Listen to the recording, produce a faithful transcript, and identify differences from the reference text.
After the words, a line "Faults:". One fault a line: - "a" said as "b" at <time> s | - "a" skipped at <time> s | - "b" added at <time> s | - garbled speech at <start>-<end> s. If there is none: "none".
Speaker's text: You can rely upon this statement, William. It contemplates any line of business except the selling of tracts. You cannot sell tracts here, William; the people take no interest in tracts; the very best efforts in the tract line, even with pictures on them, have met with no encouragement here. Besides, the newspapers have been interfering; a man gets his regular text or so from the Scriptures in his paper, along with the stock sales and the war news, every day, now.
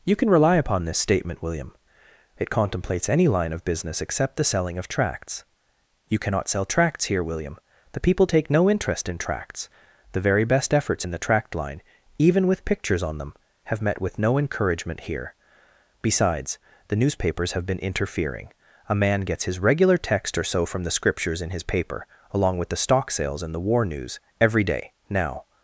You can rely upon this statement, William. It contemplates any line of business except the selling of tracts. You cannot sell tracts here, William; the people take no interest in tracts; the very best efforts in the tract line, even with pictures on them, have met with no encouragement here. Besides, the newspapers have been interfering; a man gets his regular text or so from the Scriptures in his paper, along with the stock sales and the war news, every day, now.
Faults:
none